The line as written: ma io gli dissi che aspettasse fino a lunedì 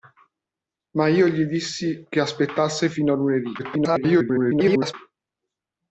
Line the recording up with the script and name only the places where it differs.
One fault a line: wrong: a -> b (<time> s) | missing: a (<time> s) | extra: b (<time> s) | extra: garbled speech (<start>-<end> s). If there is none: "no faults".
extra: garbled speech (3.6-4.9 s)